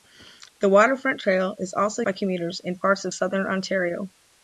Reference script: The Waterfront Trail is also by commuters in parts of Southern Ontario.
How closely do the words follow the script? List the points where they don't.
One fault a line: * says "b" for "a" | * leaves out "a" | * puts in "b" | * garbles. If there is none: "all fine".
all fine